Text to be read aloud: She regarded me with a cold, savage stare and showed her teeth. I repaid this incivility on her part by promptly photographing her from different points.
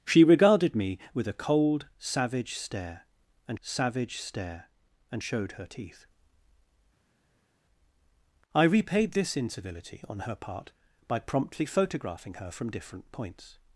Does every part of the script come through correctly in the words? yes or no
no